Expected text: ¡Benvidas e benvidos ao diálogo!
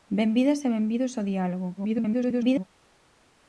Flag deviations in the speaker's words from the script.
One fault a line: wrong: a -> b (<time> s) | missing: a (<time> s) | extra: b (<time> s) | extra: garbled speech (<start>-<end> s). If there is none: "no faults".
extra: garbled speech (1.8-2.6 s)